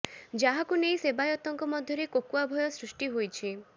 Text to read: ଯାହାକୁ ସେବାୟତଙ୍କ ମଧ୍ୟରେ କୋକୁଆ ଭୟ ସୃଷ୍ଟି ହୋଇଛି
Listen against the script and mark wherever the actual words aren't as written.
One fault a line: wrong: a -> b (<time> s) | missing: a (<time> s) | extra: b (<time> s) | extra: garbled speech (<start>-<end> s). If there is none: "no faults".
extra: ନେଇ (0.8 s)